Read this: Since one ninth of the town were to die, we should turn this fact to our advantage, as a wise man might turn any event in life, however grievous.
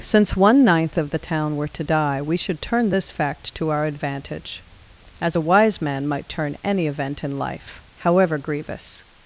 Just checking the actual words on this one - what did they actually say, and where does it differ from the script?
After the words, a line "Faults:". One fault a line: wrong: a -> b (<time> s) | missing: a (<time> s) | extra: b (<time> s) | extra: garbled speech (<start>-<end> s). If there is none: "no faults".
Since one ninth of the town were to die, we should turn this fact to our advantage, as a wise man might turn any event in life, however grievous.
Faults:
no faults